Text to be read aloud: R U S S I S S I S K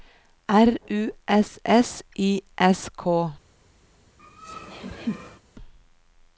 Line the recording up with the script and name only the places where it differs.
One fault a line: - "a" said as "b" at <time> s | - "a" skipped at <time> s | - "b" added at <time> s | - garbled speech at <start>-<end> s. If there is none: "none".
- "S I S" skipped at 2.9 s